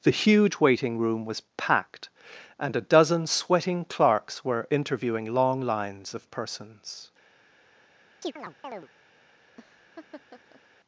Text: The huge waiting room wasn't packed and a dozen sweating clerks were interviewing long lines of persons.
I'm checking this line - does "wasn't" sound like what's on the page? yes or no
no